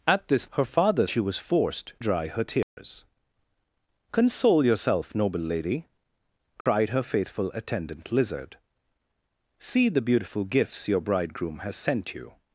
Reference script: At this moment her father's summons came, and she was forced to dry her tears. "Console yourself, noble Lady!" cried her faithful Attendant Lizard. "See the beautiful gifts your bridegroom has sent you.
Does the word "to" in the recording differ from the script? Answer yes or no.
yes